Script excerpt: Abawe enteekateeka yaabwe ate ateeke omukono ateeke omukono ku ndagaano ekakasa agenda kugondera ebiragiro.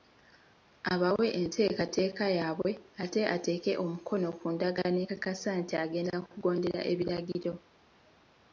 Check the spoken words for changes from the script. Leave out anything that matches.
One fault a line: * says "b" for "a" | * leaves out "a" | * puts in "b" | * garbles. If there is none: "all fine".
* leaves out "ateeke omukono"
* puts in "nti"